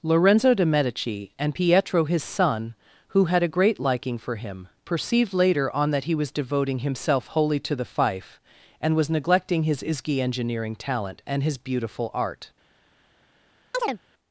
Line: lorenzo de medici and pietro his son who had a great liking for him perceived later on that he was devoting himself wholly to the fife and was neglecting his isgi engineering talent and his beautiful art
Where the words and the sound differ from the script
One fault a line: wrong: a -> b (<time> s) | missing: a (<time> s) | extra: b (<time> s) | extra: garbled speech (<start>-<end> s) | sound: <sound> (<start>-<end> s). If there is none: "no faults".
sound: chirp (13.7-14.0 s)